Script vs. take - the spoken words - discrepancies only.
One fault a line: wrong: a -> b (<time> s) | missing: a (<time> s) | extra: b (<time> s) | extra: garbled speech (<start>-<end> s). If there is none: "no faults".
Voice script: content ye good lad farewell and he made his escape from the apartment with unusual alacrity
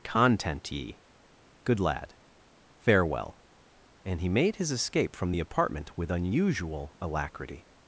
no faults